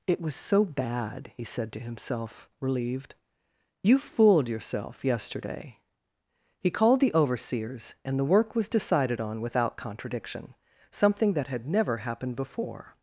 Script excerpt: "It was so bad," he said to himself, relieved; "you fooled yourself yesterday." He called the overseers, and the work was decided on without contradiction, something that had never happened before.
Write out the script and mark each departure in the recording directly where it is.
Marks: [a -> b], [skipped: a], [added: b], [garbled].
"It was so bad," he said to himself, relieved; "you fooled yourself yesterday." He called the overseers, and the work was decided on without contradiction, something that had never happened before.